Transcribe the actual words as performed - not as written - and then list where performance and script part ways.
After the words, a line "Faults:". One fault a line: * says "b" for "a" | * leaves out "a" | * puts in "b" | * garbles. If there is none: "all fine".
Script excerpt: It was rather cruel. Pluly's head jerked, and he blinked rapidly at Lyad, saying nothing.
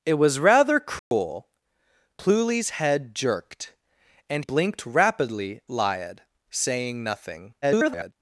It was rather cruel. Pluly's head jerked, and blinked rapidly Lyad, saying nothing. [garbled]
Faults:
* leaves out "he"
* leaves out "at"
* garbles